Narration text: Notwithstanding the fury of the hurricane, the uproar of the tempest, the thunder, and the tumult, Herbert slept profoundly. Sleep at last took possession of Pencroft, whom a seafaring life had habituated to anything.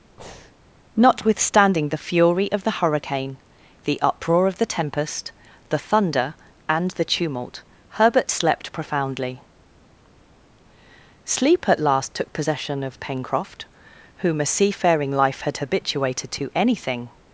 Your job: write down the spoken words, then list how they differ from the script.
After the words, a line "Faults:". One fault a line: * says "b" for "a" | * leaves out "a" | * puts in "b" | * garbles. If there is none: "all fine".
Notwithstanding the fury of the hurricane, the uproar of the tempest, the thunder, and the tumult, Herbert slept profoundly. Sleep at last took possession of Pencroft, whom a seafaring life had habituated to anything.
Faults:
all fine